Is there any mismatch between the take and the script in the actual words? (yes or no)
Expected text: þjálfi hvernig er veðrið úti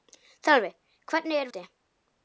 yes